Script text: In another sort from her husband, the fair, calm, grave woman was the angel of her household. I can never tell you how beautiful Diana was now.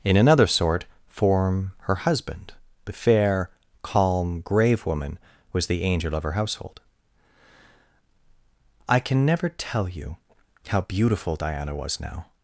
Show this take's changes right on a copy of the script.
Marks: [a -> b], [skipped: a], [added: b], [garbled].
In another sort [from -> form] her husband, the fair, calm, grave woman was the angel of her household. I can never tell you how beautiful Diana was now.